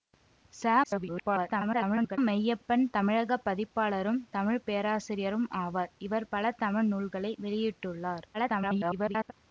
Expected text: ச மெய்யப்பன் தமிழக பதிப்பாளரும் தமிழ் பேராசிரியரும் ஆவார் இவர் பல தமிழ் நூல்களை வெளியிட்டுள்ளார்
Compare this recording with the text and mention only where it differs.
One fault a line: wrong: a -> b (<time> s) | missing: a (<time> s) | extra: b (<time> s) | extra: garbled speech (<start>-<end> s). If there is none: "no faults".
extra: garbled speech (0.8-2.2 s)
extra: garbled speech (8.3-9.3 s)